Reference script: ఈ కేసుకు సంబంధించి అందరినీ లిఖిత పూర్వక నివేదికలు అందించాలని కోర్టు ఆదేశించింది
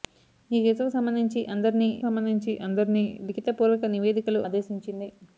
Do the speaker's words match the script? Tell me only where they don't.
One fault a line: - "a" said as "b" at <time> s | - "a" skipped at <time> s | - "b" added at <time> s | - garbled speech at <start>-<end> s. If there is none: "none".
- "సంబంధించి అందరినీ" added at 2.0 s
- "అందించాలని కోర్టు" skipped at 4.4 s